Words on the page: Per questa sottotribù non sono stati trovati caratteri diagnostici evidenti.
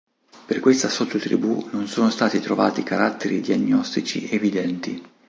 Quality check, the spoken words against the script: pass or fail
pass